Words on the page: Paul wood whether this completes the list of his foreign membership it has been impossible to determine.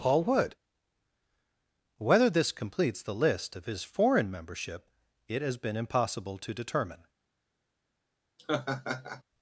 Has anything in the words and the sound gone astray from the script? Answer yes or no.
yes